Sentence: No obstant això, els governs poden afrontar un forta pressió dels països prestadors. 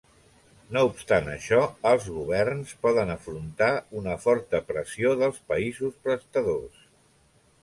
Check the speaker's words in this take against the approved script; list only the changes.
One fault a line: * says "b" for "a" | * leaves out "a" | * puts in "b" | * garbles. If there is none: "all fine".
* says "una" for "un"